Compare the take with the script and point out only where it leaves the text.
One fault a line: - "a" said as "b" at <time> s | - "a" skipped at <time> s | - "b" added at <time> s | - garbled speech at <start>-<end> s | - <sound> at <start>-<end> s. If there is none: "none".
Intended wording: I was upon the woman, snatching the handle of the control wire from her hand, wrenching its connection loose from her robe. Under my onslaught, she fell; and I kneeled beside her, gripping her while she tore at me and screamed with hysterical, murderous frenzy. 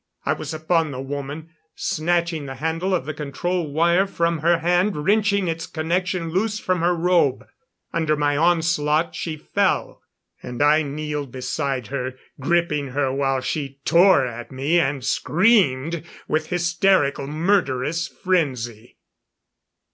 none